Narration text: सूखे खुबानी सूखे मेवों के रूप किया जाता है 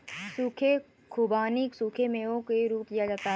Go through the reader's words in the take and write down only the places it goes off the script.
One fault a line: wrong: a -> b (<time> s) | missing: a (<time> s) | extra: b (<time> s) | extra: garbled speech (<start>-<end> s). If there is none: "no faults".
no faults